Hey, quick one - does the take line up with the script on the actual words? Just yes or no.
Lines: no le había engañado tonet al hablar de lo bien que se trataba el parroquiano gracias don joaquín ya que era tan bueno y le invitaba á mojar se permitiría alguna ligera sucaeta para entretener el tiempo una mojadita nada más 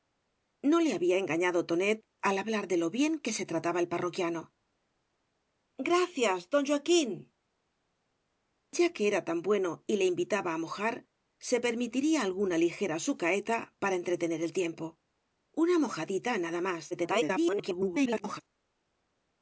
no